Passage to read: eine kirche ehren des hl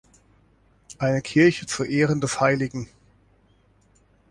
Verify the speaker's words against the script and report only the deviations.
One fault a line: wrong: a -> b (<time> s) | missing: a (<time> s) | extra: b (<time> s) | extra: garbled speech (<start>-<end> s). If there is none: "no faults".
extra: zu (1.6 s)